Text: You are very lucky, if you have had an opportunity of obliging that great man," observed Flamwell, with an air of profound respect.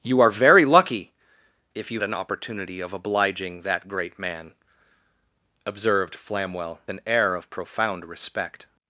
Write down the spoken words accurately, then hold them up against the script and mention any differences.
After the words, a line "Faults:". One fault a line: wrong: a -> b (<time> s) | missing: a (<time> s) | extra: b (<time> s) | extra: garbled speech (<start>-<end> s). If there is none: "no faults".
You are very lucky, if you an opportunity of obliging that great man," observed Flamwell, an air of profound respect.
Faults:
missing: have had (2.0 s)
missing: with (6.8 s)